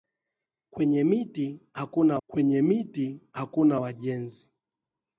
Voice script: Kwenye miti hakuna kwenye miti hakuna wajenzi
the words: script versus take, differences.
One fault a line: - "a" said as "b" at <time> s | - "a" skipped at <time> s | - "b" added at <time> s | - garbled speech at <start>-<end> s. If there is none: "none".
none